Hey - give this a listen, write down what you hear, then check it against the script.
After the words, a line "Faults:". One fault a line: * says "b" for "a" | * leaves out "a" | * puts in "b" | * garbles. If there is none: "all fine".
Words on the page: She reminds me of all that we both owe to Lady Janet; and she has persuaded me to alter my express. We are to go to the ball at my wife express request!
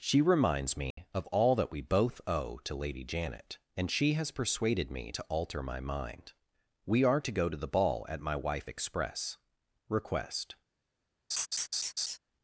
She reminds me of all that we both owe to Lady Janet; and she has persuaded me to alter my mind. We are to go to the ball at my wife express request!
Faults:
* says "mind" for "express"